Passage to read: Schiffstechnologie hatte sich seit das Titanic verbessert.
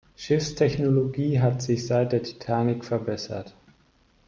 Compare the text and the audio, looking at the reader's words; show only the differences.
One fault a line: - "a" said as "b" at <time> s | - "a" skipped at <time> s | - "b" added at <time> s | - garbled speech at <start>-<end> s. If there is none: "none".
- "hatte" said as "hat" at 1.4 s
- "das" said as "der" at 2.1 s